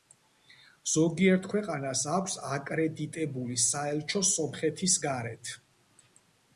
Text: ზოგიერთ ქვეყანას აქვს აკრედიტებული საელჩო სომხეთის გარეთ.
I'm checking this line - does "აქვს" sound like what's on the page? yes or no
yes